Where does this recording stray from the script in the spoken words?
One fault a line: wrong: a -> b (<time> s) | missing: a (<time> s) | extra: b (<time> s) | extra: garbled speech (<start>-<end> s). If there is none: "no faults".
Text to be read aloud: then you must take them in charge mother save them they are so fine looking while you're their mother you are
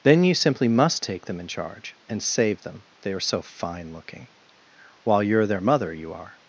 extra: simply (0.3 s)
wrong: mother -> and (2.1 s)